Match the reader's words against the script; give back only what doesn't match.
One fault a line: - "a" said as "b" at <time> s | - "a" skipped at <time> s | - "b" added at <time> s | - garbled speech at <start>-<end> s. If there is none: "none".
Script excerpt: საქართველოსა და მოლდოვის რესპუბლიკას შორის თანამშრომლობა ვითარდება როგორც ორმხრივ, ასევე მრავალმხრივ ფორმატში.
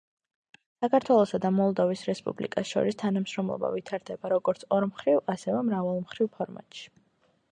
none